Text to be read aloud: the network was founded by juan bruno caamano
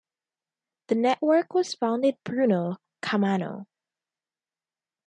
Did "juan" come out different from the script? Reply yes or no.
yes